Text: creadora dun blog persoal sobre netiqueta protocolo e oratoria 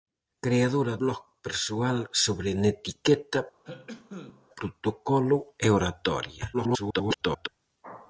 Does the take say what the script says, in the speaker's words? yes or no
no